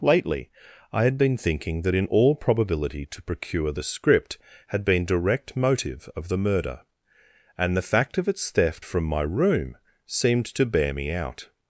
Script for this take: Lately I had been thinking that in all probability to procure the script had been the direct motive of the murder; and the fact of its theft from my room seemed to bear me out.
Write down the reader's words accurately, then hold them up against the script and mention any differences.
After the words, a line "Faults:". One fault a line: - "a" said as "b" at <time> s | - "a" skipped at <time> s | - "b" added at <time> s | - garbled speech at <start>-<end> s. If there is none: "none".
Lately I had been thinking that in all probability to procure the script had been direct motive of the murder; and the fact of its theft from my room seemed to bear me out.
Faults:
- "the" skipped at 5.0 s